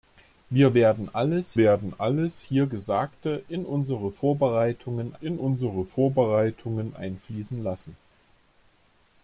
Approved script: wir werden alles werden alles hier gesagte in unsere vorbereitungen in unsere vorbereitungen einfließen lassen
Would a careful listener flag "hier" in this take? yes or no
no